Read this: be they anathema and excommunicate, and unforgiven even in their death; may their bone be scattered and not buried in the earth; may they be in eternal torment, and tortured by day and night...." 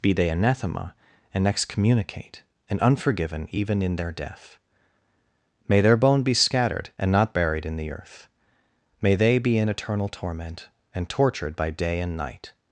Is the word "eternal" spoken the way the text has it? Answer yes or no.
yes